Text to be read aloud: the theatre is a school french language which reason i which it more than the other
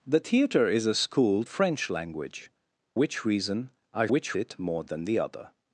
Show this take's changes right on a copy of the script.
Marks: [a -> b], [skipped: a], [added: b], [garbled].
the theatre is a school french language which reason i which it more than the other